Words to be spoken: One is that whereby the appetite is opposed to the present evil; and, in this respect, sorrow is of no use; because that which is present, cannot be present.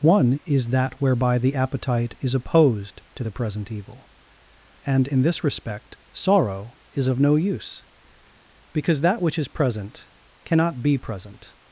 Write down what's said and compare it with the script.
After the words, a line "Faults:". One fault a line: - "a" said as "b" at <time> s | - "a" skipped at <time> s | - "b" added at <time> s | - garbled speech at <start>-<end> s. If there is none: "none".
One is that whereby the appetite is opposed to the present evil; and, in this respect, sorrow is of no use; because that which is present, cannot be present.
Faults:
none